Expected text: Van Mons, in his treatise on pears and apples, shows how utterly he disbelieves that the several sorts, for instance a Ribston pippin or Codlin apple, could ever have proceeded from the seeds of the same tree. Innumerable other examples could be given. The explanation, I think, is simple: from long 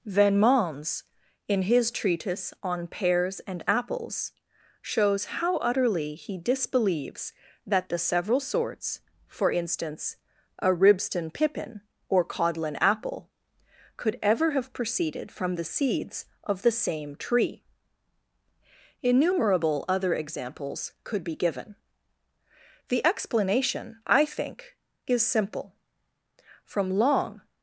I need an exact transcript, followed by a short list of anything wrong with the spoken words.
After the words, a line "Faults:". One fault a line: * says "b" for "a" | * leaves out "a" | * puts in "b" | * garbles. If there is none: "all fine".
Van Mons, in his treatise on pears and apples, shows how utterly he disbelieves that the several sorts, for instance a Ribston pippin or Codlin apple, could ever have proceeded from the seeds of the same tree. Innumerable other examples could be given. The explanation, I think, is simple: from long
Faults:
all fine